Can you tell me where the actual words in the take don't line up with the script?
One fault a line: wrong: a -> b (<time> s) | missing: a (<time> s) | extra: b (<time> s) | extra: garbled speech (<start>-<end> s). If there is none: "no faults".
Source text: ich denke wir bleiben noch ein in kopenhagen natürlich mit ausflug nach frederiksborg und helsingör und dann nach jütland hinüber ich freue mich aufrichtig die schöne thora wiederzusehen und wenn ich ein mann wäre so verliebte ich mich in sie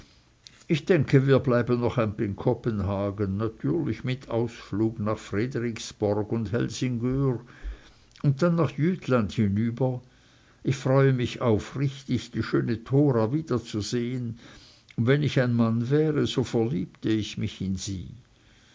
no faults